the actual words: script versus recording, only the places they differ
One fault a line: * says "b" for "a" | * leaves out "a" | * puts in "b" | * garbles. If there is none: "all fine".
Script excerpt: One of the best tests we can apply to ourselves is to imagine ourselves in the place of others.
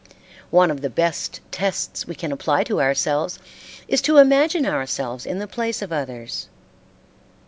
all fine